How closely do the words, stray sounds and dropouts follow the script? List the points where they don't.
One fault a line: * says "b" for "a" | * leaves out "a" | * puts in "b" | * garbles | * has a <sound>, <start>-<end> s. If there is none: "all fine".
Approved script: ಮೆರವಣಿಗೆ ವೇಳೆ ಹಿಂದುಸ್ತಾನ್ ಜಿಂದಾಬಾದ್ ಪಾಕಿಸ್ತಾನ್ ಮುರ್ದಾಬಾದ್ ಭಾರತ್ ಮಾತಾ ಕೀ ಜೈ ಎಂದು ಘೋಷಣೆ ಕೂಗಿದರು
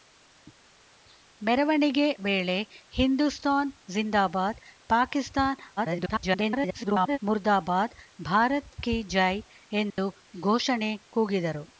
* garbles
* leaves out "ಮಾತಾ"
* has a dropout, 9.9-10.0 s